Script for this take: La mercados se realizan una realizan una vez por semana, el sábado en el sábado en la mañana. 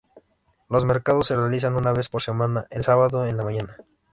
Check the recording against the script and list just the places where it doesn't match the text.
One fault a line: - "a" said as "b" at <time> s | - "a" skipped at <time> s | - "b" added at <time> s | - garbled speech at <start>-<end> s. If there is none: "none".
- "La" said as "Los" at 0.7 s
- "realizan una" skipped at 1.9 s
- "el sábado en" skipped at 3.4 s